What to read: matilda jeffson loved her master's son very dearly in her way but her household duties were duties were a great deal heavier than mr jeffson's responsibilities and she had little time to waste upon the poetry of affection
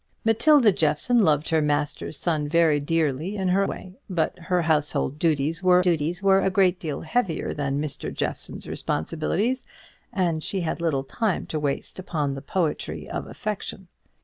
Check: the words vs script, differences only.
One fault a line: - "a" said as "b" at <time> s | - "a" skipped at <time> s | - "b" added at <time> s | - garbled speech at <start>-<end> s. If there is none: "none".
none